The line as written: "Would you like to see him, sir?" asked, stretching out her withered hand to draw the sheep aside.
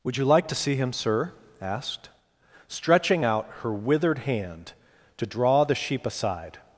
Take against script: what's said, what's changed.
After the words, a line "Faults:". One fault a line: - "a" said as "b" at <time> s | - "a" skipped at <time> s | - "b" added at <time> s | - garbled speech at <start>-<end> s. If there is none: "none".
"Would you like to see him, sir?" asked, stretching out her withered hand to draw the sheep aside.
Faults:
none